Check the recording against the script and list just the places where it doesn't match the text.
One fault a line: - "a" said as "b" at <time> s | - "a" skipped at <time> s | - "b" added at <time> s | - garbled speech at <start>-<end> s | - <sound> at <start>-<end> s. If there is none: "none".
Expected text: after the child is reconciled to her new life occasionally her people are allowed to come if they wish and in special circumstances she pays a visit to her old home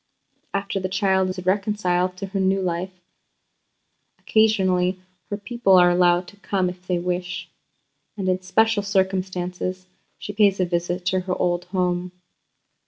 none